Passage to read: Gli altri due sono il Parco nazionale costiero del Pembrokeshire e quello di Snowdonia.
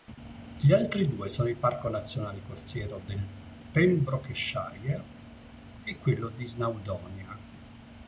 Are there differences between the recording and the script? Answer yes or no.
no